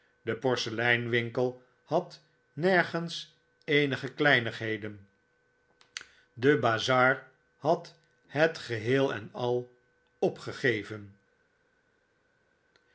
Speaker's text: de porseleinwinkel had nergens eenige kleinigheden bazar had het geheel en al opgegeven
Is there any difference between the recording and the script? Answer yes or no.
yes